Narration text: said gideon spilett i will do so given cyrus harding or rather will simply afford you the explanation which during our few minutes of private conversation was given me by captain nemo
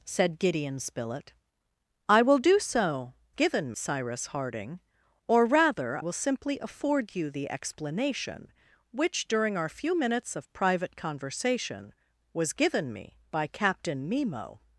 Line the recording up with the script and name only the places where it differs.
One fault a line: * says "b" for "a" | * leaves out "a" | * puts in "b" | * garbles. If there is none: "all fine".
all fine